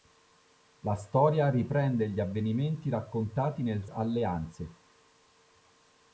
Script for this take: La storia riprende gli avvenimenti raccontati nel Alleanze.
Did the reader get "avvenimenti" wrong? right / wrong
right